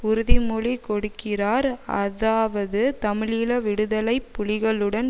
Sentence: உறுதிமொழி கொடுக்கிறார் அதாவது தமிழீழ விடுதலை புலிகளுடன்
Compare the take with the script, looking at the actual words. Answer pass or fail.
pass